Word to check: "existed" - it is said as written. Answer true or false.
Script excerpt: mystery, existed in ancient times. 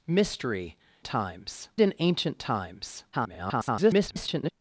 false